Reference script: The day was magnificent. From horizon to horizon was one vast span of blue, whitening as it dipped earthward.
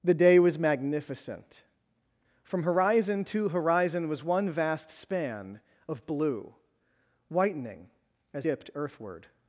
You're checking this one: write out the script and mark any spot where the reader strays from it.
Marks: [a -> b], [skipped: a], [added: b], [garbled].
The day was magnificent. From horizon to horizon was one vast span of blue, whitening as [skipped: it] dipped earthward.